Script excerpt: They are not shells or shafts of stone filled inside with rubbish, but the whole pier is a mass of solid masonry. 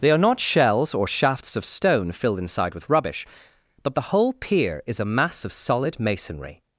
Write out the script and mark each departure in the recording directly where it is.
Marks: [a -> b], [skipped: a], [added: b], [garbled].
They are not shells or shafts of stone filled inside with rubbish, but the whole pier is a mass of solid masonry.